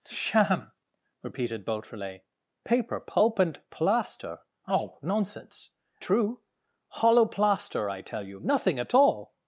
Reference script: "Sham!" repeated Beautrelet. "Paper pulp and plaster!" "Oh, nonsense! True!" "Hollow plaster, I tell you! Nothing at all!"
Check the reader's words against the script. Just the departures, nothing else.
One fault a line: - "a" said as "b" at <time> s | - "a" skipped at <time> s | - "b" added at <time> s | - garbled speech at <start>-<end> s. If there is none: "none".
none